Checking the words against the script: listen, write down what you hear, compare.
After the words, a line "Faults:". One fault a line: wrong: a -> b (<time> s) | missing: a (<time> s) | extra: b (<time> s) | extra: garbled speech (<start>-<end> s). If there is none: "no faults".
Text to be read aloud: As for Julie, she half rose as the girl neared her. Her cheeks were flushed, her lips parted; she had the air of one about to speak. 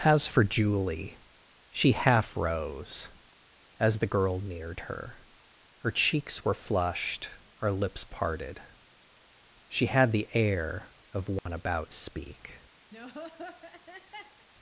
As for Julie, she half rose as the girl neared her. Her cheeks were flushed, her lips parted; she had the air of one about speak.
Faults:
missing: to (11.9 s)